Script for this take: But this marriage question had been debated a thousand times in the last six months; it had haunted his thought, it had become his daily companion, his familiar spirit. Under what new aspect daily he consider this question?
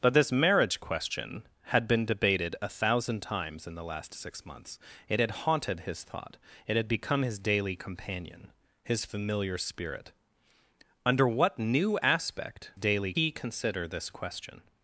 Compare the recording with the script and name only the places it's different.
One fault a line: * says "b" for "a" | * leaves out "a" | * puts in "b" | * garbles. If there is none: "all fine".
all fine